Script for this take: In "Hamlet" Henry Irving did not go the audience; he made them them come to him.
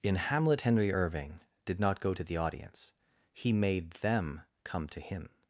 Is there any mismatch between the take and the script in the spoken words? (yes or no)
yes